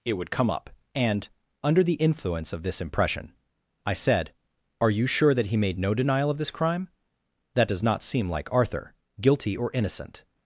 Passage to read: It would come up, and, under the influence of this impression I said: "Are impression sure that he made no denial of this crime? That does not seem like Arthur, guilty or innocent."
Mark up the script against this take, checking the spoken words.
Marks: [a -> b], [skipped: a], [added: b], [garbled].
It would come up, and, under the influence of this impression I said: "Are [impression -> you] sure that he made no denial of this crime? That does not seem like Arthur, guilty or innocent."